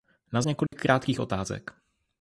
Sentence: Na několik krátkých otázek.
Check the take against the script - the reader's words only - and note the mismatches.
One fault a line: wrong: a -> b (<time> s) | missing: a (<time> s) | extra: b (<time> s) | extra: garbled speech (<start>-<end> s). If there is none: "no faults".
no faults